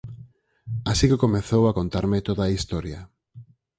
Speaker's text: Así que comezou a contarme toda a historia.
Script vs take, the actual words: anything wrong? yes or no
no